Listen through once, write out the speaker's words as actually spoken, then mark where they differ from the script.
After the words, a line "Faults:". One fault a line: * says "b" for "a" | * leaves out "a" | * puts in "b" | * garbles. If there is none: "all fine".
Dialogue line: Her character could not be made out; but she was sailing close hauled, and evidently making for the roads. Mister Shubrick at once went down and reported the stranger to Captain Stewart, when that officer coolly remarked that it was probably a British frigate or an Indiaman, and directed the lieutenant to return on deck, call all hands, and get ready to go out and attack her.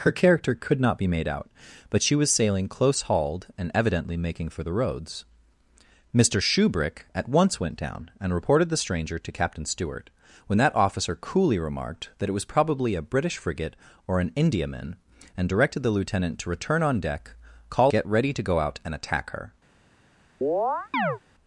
Her character could not be made out; but she was sailing close hauled, and evidently making for the roads. Mister Shubrick at once went down and reported the stranger to Captain Stewart, when that officer coolly remarked that it was probably a British frigate or an Indiaman, and directed the lieutenant to return on deck, call get ready to go out and attack her.
Faults:
* leaves out "all hands and"